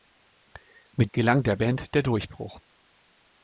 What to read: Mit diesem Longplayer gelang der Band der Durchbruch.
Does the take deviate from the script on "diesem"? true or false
true